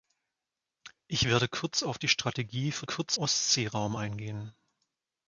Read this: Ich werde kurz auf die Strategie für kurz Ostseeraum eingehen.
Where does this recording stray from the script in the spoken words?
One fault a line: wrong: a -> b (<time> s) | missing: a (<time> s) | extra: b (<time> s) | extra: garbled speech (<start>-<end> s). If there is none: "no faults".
no faults